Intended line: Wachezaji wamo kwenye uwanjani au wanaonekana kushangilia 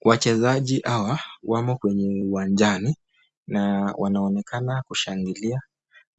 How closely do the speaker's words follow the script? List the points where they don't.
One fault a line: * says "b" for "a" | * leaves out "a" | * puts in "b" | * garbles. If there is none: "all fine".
* puts in "hawa"
* says "na" for "au"